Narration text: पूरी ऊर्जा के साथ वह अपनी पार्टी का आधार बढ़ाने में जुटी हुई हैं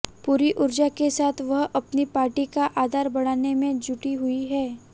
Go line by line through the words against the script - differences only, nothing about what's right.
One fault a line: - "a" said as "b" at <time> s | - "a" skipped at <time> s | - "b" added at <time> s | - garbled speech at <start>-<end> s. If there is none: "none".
none